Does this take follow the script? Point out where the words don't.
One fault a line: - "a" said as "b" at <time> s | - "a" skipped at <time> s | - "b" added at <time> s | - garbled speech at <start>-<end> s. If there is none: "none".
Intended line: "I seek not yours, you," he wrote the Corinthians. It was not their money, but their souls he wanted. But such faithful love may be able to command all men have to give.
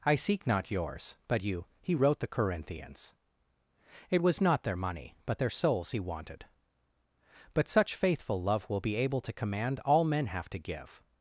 - "but" added at 1.3 s
- "may" said as "will" at 8.7 s